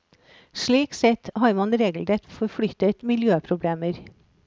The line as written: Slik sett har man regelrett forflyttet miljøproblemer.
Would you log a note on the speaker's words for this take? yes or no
no